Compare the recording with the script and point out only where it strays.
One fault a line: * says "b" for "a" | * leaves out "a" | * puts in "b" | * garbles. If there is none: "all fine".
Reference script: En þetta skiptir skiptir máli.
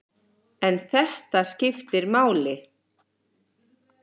* leaves out "skiptir"